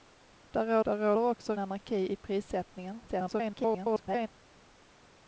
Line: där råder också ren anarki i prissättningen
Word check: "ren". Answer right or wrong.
wrong